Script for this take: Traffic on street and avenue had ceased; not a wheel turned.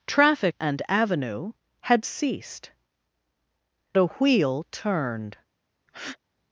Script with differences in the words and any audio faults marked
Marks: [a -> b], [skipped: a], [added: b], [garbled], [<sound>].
Traffic [skipped: on street] and avenue had ceased; [skipped: not] a wheel turned. [breath]